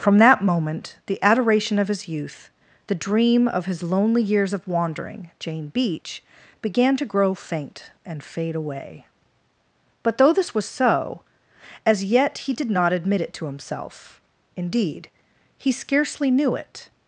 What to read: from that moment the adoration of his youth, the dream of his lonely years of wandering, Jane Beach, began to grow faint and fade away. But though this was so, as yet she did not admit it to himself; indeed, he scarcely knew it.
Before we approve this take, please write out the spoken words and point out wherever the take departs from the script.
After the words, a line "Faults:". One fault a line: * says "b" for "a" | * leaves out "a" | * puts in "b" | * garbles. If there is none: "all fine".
from that moment the adoration of his youth, the dream of his lonely years of wandering, Jane Beach, began to grow faint and fade away. But though this was so, as yet he did not admit it to himself; indeed, he scarcely knew it.
Faults:
* says "he" for "she"